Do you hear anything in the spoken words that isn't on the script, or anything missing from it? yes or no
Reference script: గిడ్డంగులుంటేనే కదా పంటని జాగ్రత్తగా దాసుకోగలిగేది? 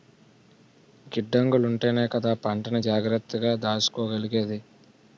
no